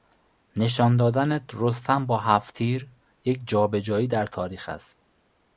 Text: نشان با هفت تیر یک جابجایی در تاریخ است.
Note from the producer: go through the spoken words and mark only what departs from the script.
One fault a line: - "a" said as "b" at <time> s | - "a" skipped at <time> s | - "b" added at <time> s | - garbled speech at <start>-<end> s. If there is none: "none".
- "دادن رستم" added at 1.0 s